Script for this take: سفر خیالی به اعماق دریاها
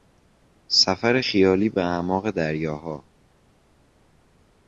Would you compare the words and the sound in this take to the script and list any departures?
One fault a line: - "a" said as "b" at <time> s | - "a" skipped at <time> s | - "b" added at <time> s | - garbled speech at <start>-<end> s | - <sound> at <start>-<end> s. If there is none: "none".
none